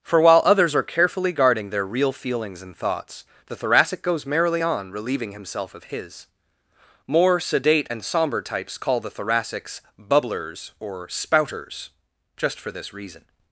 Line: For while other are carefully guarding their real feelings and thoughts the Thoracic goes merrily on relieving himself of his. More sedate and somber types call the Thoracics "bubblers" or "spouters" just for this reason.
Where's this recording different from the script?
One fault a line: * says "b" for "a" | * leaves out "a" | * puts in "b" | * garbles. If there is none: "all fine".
* says "others" for "other"